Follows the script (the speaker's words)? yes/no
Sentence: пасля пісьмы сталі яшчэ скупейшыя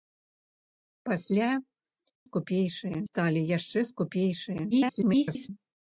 no